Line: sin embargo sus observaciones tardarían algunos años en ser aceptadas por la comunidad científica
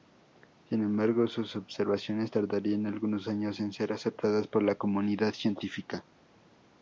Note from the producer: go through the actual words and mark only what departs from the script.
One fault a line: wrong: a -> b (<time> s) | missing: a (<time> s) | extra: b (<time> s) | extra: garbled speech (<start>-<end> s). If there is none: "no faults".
no faults